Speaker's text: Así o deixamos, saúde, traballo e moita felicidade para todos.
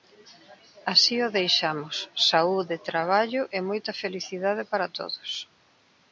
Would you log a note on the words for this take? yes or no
no